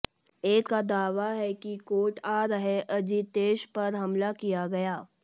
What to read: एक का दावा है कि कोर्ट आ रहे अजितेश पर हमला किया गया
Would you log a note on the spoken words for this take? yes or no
no